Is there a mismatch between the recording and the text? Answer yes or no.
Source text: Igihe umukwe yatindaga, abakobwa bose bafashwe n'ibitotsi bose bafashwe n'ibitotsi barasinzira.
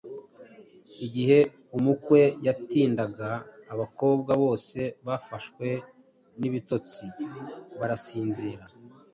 yes